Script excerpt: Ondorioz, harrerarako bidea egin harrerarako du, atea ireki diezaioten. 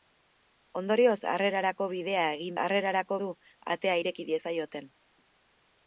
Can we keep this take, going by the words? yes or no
yes